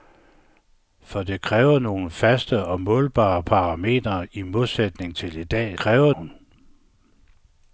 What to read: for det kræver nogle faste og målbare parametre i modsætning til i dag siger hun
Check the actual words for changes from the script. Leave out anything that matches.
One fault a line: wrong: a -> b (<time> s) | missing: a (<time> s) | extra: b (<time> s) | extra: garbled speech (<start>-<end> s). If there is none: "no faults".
wrong: siger -> kræver (5.8 s)